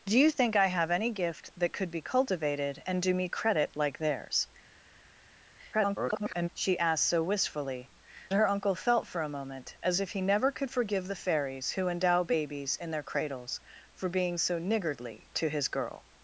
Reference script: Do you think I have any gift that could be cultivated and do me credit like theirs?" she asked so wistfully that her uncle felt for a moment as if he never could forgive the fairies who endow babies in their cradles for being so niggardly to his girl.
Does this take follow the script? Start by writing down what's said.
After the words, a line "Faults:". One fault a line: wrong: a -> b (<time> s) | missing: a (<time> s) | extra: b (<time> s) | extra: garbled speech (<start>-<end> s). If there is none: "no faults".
Do you think I have any gift that could be cultivated and do me credit like theirs?" [garbled] she asked so wistfully her uncle felt for a moment as if he never could forgive the fairies who endow babies in their cradles for being so niggardly to his girl.
Faults:
extra: garbled speech (5.7-6.5 s)
missing: that (7.9 s)